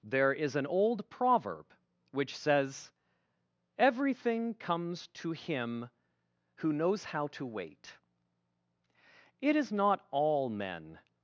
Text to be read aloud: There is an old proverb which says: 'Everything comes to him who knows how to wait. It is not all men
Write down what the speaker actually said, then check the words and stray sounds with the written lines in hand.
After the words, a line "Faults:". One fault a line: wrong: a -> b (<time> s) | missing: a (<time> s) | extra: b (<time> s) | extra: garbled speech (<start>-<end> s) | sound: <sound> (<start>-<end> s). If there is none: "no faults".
There is an old proverb which says: 'Everything comes to him who knows how to wait. It is not all men
Faults:
no faults